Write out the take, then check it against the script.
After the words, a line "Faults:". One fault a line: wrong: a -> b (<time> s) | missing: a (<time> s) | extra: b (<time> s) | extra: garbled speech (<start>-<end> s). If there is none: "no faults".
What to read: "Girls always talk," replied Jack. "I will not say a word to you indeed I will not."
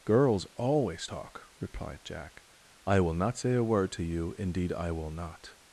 "Girls always talk," replied Jack. "I will not say a word to you indeed I will not."
Faults:
no faults